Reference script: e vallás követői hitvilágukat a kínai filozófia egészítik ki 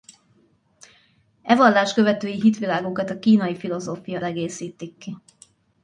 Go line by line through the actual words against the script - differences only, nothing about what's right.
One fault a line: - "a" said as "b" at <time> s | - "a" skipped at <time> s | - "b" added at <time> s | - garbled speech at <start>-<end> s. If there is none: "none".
none